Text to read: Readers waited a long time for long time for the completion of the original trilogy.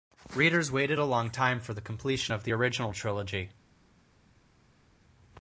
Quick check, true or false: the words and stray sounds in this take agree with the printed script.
false